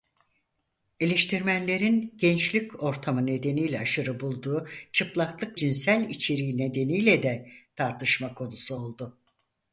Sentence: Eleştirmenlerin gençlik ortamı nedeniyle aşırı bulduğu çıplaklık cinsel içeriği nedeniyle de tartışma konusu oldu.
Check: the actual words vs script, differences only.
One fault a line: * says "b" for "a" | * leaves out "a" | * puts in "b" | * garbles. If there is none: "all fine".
all fine